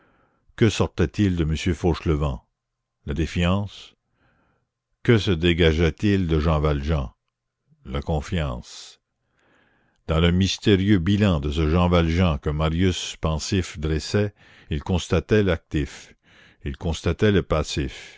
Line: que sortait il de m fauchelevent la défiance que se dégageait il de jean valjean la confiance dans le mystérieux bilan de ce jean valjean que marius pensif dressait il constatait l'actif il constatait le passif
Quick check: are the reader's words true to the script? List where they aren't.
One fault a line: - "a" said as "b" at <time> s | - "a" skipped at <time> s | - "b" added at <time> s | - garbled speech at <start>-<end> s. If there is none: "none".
none